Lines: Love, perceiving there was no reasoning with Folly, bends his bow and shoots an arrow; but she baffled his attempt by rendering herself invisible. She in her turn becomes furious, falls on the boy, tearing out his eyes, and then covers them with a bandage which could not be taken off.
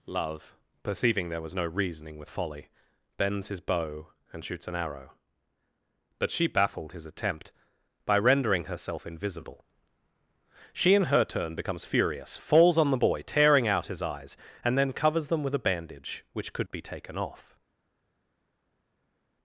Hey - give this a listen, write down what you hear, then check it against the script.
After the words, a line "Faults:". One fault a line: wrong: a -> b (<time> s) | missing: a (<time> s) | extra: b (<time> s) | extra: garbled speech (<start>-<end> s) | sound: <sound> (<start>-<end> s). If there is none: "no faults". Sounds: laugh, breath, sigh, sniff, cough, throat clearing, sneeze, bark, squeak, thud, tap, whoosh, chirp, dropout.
Love, perceiving there was no reasoning with Folly, bends his bow and shoots an arrow; but she baffled his attempt by rendering herself invisible. She in her turn becomes furious, falls on the boy, tearing out his eyes, and then covers them with a bandage which could be taken off.
Faults:
missing: not (16.7 s)